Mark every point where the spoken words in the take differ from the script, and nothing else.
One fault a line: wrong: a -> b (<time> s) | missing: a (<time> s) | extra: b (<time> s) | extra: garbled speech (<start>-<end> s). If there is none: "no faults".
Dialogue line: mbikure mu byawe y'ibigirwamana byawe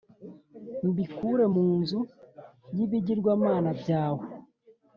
wrong: byawe -> nzu (1.8 s)